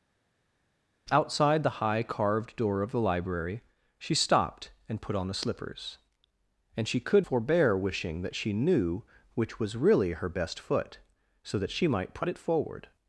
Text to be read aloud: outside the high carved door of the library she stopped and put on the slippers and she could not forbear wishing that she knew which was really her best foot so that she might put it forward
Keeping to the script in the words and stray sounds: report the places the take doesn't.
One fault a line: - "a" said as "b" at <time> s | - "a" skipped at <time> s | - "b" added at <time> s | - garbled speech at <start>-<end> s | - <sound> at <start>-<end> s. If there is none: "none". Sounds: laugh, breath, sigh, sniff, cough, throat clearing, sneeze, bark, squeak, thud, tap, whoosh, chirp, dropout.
- "not" skipped at 7.3 s